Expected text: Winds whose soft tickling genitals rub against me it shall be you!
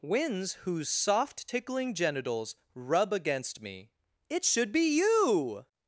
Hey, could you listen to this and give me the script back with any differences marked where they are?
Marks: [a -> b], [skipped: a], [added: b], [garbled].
Winds whose soft tickling genitals rub against me it [shall -> should] be you!